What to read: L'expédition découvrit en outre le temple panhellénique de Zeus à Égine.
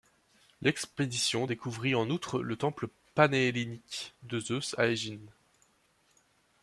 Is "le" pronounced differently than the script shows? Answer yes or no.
no